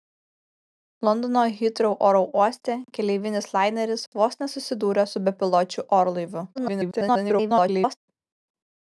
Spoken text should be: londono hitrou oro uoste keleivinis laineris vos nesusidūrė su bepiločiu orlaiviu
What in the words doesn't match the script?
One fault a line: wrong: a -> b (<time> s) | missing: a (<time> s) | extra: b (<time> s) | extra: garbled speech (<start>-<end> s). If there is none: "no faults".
extra: garbled speech (6.6-8.0 s)